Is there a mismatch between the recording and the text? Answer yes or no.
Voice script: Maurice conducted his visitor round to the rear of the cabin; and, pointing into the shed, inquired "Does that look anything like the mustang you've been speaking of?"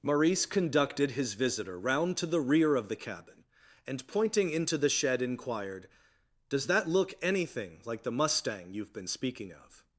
no